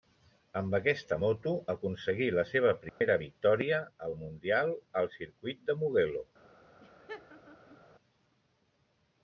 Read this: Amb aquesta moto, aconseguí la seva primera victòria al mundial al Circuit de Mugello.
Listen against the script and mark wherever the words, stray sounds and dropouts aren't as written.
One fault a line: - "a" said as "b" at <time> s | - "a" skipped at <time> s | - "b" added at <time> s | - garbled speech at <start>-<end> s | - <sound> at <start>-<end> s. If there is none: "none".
- dropout at 2.9-3.0 s
- laugh at 6.8-7.8 s